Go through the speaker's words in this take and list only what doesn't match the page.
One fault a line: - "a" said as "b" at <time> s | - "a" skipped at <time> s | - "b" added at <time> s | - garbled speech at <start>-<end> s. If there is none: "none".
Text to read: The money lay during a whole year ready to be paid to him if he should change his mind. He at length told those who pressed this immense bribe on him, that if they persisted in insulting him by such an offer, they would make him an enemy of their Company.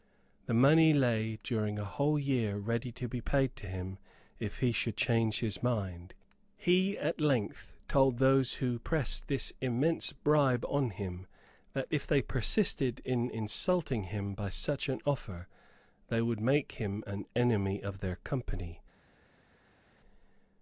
none